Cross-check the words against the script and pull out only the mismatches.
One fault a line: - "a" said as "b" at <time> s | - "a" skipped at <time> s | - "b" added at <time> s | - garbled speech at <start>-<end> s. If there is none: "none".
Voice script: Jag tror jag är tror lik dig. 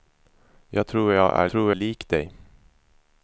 none